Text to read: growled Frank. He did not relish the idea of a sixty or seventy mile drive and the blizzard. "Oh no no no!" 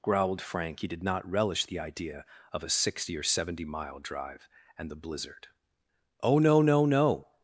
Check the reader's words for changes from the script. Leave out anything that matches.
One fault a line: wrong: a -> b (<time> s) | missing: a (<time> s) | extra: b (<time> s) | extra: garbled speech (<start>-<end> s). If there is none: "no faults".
no faults